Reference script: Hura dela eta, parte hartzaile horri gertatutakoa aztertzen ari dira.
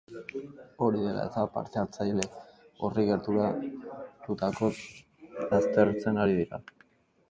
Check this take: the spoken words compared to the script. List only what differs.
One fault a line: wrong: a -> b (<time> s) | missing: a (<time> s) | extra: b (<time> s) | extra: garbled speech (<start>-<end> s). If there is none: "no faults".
wrong: Hura -> Hori (0.8 s)